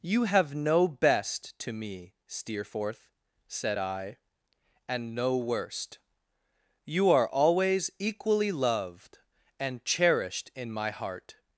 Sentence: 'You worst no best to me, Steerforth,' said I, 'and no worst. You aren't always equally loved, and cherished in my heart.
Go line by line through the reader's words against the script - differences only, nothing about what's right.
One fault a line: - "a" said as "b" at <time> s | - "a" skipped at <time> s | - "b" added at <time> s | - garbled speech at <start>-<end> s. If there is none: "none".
- "worst" said as "have" at 0.2 s
- "aren't" said as "are" at 7.1 s